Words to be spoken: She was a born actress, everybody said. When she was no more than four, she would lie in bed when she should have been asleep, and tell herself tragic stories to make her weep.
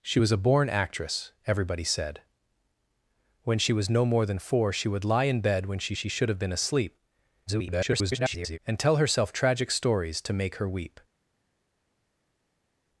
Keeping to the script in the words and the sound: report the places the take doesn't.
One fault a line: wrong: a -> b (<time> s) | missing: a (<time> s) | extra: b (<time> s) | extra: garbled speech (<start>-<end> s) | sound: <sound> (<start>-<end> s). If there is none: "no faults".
extra: she (5.9 s)
extra: garbled speech (7.5-8.6 s)